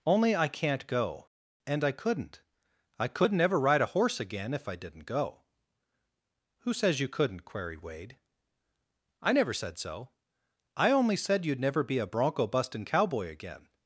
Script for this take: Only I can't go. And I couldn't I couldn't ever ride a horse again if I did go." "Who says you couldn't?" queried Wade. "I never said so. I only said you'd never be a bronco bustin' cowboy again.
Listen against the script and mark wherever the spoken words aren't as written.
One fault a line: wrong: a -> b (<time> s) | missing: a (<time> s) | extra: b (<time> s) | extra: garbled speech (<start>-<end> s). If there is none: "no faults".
wrong: did -> didn't (4.8 s)